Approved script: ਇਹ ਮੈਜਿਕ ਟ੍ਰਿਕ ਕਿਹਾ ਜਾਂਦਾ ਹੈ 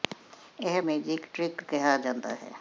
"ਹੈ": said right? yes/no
yes